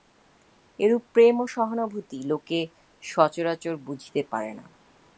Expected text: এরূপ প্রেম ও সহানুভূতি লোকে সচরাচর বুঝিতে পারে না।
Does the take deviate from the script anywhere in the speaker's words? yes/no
no